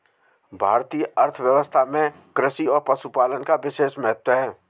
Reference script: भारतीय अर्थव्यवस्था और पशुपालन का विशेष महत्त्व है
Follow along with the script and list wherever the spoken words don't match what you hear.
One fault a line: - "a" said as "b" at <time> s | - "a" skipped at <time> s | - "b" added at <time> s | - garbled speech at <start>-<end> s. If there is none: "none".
- "में कृषि" added at 1.9 s